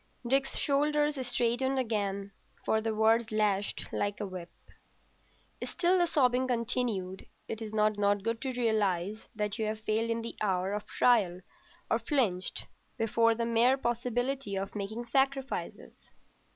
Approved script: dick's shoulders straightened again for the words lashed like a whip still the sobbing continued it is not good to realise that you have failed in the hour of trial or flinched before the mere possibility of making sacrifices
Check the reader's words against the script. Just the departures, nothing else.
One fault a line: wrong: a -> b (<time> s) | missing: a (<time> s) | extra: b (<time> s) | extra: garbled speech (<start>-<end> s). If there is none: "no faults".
extra: not (8.0 s)